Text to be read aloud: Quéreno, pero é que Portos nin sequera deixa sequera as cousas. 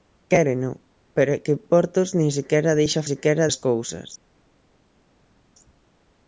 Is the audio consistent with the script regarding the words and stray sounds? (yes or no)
yes